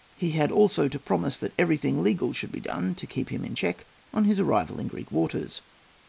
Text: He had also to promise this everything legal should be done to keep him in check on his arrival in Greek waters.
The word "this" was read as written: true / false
false